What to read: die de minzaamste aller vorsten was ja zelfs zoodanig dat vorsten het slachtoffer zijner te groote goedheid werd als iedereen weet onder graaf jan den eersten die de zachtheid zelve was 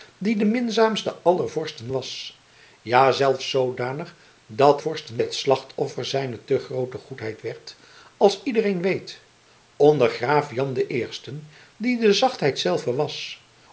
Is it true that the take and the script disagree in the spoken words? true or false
false